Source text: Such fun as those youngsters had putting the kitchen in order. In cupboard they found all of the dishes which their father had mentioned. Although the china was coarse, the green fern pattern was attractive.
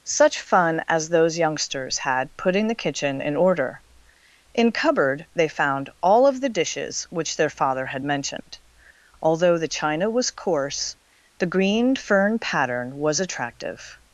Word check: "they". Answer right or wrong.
right